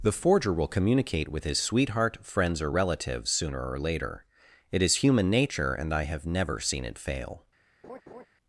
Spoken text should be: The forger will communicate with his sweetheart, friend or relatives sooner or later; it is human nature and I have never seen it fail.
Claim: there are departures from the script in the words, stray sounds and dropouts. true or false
true